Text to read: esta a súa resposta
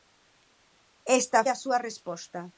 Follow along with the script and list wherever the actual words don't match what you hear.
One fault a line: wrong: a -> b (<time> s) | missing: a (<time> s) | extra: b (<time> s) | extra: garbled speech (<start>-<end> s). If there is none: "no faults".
no faults